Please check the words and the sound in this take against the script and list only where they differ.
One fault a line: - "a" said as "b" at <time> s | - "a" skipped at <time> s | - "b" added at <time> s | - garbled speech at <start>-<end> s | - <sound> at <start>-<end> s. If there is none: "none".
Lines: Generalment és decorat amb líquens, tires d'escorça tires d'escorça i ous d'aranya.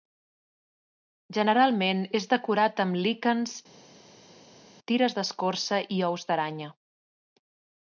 - "tires d'escorça" skipped at 5.8 s